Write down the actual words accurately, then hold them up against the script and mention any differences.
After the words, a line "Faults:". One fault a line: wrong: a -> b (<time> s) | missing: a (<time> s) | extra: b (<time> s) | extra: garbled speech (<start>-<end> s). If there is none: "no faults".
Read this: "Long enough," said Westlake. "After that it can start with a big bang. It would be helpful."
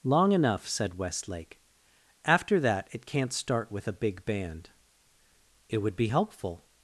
"Long enough," said Westlake. "After that it can't start with a big band. It would be helpful."
Faults:
wrong: can -> can't (3.0 s)
wrong: bang -> band (4.2 s)